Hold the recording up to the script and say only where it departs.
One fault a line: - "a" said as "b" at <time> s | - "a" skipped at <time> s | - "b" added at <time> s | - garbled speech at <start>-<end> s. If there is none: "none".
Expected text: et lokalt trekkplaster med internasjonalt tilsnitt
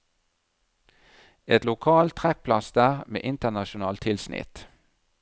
none